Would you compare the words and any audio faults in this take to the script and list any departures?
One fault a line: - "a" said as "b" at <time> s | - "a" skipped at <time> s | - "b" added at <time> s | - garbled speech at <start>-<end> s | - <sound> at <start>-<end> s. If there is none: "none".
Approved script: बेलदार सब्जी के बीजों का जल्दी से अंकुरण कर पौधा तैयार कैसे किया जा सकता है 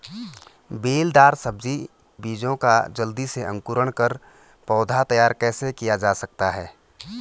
- "के" skipped at 1.8 s